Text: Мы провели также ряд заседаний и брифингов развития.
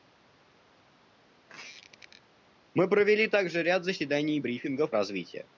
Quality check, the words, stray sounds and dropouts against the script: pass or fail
fail